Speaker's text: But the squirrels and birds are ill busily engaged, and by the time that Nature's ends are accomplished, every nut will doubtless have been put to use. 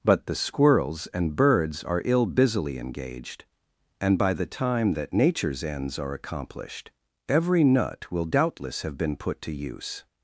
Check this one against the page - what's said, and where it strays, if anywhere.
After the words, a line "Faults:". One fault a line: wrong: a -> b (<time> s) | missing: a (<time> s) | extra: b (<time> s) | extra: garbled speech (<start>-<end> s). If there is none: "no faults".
But the squirrels and birds are ill busily engaged, and by the time that Nature's ends are accomplished, every nut will doubtless have been put to use.
Faults:
no faults